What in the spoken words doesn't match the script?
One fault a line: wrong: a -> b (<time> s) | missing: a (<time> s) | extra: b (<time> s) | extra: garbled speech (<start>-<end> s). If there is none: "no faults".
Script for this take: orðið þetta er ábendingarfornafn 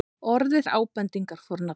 missing: þetta (0.7 s)